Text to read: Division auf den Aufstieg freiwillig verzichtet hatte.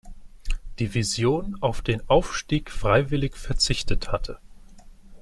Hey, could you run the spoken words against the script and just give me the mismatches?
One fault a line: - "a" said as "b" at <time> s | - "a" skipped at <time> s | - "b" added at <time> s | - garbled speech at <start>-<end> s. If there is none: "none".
none